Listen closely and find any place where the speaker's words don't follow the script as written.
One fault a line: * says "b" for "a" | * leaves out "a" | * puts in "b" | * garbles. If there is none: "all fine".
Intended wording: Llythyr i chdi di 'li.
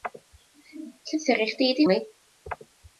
all fine